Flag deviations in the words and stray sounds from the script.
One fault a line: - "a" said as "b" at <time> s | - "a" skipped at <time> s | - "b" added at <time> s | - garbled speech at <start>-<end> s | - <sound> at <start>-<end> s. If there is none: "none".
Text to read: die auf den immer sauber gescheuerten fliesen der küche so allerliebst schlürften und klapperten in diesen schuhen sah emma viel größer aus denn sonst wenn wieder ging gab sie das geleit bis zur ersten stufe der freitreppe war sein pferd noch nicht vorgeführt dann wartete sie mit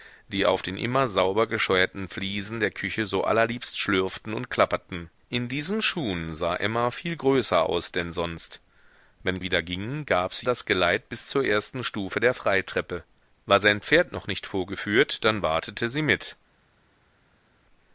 none